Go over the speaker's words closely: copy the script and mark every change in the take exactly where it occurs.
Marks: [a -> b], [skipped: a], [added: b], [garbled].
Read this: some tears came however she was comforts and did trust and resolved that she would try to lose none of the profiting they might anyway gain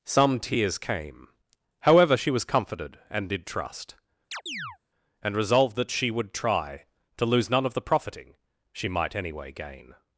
some tears came however she was [comforts -> comforted] and did trust and resolved that she would try to lose none of the profiting [they -> she] might anyway gain